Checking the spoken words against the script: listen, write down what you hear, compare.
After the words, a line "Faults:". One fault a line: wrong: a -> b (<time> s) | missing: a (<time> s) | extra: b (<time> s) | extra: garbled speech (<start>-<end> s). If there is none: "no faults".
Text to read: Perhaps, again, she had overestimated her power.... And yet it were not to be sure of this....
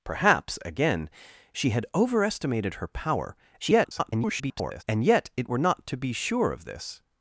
Perhaps, again, she had overestimated her power.... [garbled] And yet it were not to be sure of this....
Faults:
extra: garbled speech (3.6-4.8 s)